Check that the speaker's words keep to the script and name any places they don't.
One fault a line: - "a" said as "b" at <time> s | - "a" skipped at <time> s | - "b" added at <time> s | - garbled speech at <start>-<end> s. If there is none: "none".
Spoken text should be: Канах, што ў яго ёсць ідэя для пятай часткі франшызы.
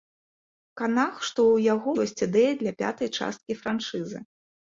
none